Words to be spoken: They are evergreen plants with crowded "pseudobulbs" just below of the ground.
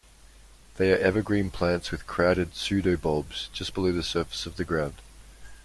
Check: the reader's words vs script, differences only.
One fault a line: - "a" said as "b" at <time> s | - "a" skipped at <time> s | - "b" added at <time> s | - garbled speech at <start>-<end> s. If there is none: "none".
- "the surface" added at 3.9 s